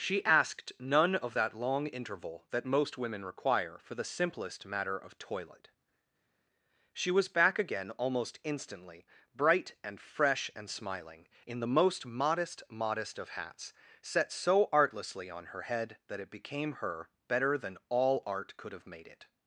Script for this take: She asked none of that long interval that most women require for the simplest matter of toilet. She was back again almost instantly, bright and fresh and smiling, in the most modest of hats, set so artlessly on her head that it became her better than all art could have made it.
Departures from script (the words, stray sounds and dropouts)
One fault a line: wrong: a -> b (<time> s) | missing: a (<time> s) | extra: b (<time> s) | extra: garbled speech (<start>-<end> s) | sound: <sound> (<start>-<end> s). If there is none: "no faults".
extra: modest (12.7 s)